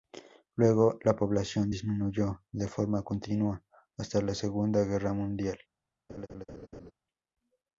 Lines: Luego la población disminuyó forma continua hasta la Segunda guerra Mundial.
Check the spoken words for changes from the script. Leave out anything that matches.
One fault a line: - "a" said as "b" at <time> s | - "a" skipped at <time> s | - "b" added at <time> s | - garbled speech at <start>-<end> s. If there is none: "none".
- "de" added at 2.5 s